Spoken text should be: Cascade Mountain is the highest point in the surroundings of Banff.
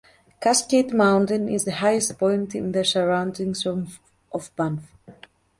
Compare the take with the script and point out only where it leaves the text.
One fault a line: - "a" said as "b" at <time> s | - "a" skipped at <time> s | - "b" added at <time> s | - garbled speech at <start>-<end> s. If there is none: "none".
none